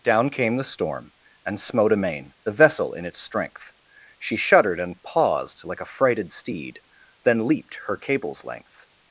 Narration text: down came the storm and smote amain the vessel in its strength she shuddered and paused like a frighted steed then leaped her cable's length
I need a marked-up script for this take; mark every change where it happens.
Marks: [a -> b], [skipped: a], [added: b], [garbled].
down came the storm and smote amain the vessel in its strength she shuddered and paused like a frighted steed then leaped her cable's length